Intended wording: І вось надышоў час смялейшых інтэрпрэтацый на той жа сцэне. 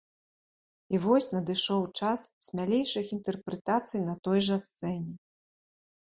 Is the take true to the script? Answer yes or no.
yes